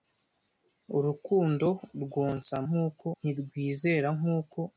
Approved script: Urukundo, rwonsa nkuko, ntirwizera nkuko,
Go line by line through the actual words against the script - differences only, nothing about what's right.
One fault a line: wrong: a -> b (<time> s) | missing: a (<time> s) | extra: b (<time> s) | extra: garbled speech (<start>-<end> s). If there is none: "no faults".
no faults